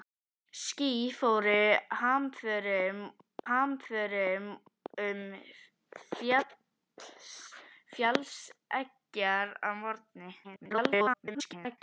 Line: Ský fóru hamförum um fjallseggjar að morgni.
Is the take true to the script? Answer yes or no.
no